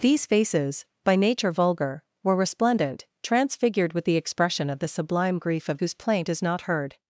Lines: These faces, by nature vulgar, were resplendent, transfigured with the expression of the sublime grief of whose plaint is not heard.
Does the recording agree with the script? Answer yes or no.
yes